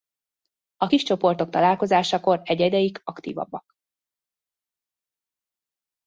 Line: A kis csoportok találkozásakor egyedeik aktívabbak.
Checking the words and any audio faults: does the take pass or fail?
pass